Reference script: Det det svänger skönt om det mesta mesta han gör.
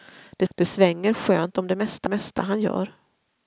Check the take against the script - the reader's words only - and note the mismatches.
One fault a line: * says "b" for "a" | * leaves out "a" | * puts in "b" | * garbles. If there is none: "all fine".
all fine